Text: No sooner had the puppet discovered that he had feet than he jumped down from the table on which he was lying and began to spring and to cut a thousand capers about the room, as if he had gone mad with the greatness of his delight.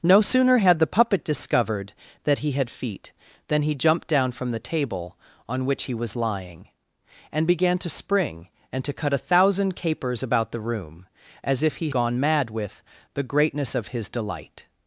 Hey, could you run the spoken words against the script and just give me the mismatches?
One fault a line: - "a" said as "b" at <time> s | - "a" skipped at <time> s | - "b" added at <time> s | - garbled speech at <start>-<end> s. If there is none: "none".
- "had" skipped at 11.9 s